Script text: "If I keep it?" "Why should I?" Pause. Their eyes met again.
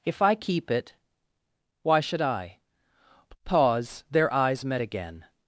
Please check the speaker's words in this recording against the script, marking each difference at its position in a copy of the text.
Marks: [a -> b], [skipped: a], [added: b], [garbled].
"If I keep it?" "Why should I?" Pause. Their eyes met again.